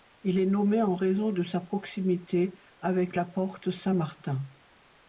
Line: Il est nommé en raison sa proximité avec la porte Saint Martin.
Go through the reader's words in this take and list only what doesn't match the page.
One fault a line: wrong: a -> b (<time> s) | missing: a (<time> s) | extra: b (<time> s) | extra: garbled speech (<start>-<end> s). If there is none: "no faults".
extra: de (1.3 s)